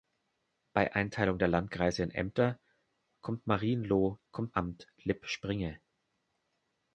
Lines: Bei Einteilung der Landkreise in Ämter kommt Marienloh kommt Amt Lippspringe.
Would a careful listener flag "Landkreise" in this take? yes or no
no